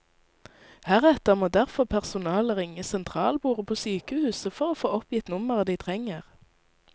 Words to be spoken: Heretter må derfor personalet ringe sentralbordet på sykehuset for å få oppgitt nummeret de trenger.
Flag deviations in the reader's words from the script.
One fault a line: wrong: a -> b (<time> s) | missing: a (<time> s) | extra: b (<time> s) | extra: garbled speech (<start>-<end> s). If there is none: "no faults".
no faults